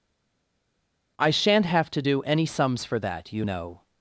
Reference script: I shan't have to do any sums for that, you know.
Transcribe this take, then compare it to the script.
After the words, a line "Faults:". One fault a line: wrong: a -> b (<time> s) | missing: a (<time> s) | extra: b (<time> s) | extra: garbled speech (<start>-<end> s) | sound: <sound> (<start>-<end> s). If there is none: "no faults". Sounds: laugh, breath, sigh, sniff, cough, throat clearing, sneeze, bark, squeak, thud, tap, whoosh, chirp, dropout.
I shan't have to do any sums for that, you know.
Faults:
no faults